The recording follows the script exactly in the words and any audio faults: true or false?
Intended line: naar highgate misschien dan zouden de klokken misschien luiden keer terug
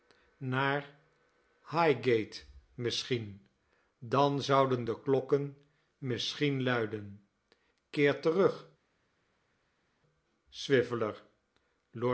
true